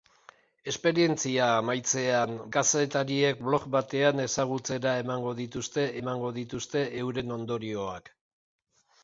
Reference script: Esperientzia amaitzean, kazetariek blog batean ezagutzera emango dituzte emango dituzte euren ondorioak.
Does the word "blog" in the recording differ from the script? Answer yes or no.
no